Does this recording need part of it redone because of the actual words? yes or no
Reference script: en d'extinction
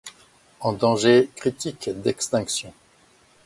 yes